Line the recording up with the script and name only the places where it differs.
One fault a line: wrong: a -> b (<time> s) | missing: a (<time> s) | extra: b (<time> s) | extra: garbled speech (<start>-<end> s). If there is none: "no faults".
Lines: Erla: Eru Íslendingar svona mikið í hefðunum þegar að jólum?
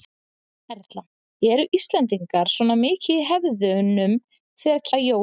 no faults